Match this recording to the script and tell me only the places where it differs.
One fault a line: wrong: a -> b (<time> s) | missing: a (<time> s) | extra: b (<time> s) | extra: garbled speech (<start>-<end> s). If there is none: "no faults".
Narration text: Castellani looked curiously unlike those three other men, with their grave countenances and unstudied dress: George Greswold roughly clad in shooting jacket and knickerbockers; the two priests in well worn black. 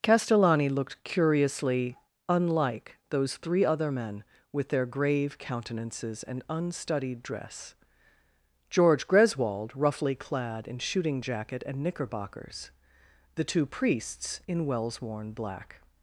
wrong: well -> wells (14.7 s)